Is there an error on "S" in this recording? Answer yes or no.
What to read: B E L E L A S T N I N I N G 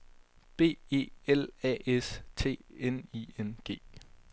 no